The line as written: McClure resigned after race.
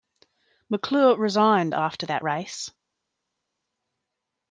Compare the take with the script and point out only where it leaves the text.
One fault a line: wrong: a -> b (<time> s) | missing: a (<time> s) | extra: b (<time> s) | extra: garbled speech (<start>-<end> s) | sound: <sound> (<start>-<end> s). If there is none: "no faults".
extra: that (2.0 s)